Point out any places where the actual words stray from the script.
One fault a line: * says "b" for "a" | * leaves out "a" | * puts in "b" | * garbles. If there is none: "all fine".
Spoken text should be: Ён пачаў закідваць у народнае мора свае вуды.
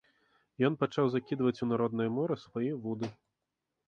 all fine